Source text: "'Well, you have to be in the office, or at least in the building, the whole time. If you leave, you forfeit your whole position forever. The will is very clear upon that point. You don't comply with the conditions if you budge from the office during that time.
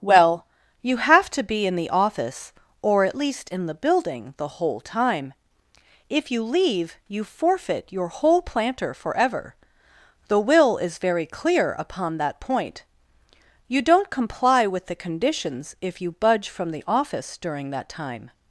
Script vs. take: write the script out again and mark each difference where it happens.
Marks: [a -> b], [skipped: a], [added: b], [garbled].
"'Well, you have to be in the office, or at least in the building, the whole time. If you leave, you forfeit your whole [position -> planter] forever. The will is very clear upon that point. You don't comply with the conditions if you budge from the office during that time.